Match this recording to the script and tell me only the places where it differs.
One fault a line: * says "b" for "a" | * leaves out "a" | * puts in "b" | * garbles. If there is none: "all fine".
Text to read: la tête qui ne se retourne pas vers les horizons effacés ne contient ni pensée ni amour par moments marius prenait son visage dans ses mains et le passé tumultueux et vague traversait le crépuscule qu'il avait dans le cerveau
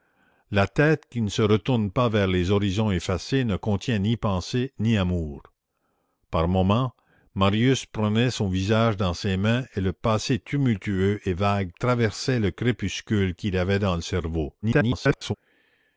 * garbles